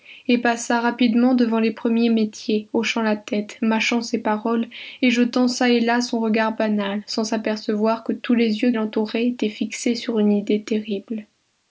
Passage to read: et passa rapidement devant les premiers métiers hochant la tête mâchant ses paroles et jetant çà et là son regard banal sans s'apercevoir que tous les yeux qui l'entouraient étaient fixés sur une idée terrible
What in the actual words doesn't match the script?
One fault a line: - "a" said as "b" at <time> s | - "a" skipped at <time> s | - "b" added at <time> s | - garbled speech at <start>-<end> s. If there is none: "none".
- "qui" skipped at 8.7 s